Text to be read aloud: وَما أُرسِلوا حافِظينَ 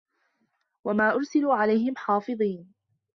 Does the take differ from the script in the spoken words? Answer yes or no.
yes